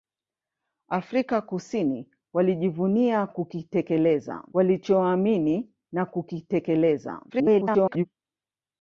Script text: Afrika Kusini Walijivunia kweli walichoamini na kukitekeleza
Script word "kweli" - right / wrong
wrong